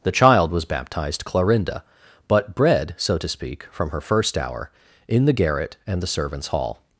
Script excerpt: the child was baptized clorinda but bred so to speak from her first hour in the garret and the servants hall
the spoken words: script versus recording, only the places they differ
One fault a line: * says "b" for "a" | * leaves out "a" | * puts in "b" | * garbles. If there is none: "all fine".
all fine